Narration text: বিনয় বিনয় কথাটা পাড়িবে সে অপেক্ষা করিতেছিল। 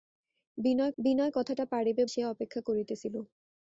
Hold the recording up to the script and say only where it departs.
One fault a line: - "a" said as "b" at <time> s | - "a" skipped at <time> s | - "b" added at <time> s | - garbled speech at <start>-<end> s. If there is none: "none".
none